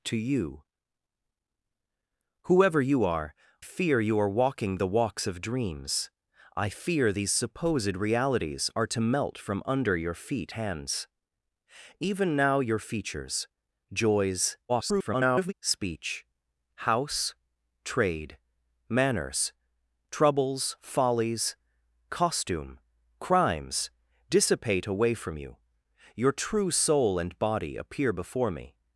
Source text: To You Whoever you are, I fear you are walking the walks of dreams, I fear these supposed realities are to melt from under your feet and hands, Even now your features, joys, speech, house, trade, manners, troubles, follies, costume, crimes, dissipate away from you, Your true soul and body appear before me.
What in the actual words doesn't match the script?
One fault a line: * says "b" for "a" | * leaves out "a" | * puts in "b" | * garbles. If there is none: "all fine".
* leaves out "I"
* leaves out "and"
* garbles